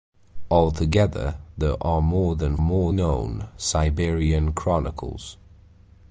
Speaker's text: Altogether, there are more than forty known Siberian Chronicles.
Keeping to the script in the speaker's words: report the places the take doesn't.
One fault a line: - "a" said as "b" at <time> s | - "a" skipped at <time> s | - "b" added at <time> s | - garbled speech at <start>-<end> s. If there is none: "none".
- "forty" said as "more" at 2.6 s